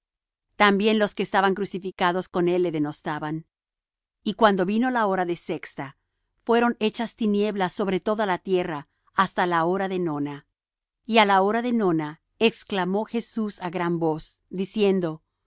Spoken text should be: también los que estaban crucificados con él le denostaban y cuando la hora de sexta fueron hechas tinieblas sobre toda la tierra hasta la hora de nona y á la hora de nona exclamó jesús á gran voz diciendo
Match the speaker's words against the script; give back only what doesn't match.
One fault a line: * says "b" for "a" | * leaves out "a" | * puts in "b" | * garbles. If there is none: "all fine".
* puts in "vino"